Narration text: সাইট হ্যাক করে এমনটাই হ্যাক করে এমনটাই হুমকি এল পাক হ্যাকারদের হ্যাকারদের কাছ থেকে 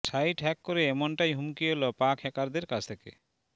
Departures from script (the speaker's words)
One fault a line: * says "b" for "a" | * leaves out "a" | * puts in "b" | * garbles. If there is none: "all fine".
* leaves out "হ্যাক করে এমনটাই"
* leaves out "হ্যাকারদের"